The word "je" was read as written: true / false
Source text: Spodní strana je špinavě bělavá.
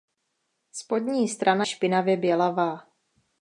false